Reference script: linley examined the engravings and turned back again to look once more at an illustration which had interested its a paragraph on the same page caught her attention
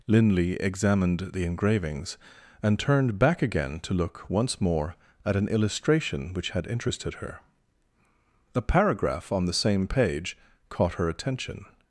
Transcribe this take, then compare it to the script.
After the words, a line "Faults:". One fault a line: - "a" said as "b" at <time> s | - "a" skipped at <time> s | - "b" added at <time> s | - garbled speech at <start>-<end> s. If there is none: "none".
linley examined the engravings and turned back again to look once more at an illustration which had interested her a paragraph on the same page caught her attention
Faults:
- "its" said as "her" at 7.2 s